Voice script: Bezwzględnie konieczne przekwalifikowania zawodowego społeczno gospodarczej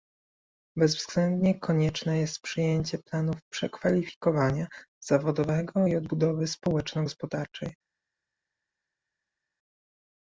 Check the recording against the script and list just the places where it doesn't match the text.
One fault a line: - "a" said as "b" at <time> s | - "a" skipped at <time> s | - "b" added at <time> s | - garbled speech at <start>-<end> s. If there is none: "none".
- "jest przyjęcie planów" added at 2.2 s
- "i odbudowy" added at 5.8 s